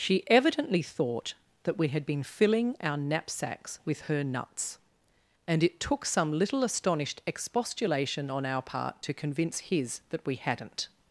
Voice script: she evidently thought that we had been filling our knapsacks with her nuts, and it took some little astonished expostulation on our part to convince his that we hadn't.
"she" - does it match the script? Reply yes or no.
yes